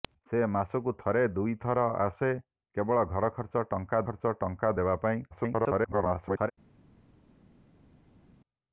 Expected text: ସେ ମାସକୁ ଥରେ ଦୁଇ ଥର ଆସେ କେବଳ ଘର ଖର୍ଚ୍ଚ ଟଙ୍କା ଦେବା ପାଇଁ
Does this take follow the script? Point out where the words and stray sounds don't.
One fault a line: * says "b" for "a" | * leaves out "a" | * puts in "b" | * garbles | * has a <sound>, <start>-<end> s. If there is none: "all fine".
* puts in "ଖର୍ଚ୍ଚ ଟଙ୍କା"
* garbles